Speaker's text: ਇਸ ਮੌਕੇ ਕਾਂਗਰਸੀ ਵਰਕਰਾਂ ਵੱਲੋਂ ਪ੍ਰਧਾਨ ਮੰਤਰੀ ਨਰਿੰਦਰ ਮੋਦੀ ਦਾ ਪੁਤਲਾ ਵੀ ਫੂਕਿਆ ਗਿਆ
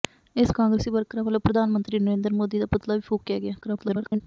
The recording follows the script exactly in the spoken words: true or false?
false